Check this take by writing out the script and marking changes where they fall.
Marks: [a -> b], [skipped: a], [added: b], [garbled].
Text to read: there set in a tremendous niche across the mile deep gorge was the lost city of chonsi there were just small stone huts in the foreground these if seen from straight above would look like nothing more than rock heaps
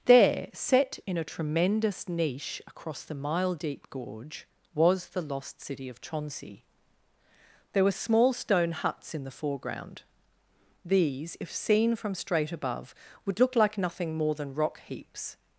there set in a tremendous niche across the mile deep gorge was the lost city of chonsi there were [skipped: just] small stone huts in the foreground these if seen from straight above would look like nothing more than rock heaps